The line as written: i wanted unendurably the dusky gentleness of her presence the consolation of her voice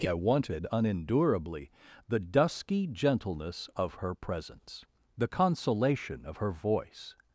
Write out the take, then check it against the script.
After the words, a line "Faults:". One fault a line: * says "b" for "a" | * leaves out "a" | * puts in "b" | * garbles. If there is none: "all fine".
i wanted unendurably the dusky gentleness of her presence the consolation of her voice
Faults:
all fine